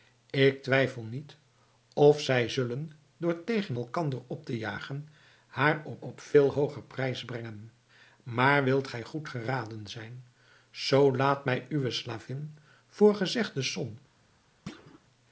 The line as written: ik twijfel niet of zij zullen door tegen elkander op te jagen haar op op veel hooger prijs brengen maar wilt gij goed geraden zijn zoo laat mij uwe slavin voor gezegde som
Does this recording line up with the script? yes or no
yes